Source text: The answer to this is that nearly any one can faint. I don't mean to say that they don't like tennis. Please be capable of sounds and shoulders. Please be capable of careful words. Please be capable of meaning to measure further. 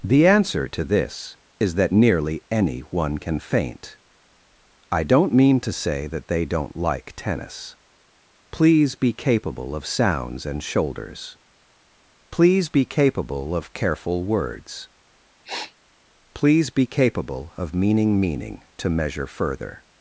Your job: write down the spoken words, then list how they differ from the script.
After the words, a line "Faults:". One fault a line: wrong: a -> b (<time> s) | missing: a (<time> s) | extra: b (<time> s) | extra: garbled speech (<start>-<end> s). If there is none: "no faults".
The answer to this is that nearly any one can faint. I don't mean to say that they don't like tennis. Please be capable of sounds and shoulders. Please be capable of careful words. Please be capable of meaning meaning to measure further.
Faults:
extra: meaning (18.2 s)